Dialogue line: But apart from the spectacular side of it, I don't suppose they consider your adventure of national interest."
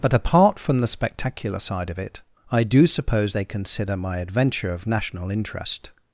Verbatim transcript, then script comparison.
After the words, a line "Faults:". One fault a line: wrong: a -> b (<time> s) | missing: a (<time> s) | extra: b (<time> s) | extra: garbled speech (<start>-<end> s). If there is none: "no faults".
But apart from the spectacular side of it, I do suppose they consider my adventure of national interest."
Faults:
wrong: don't -> do (2.6 s)
wrong: your -> my (4.0 s)